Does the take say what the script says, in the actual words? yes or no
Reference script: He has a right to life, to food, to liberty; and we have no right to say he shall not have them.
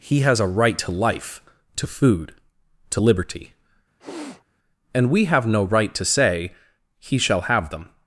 no